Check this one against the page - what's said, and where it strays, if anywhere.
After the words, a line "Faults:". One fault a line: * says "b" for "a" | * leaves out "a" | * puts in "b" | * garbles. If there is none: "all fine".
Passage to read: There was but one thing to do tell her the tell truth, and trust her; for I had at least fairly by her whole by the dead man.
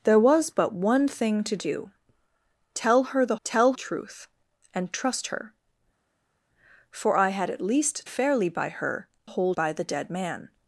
There was but one thing to do tell her the tell truth, and trust her; for I had at least fairly by her whole by the dead man.
Faults:
all fine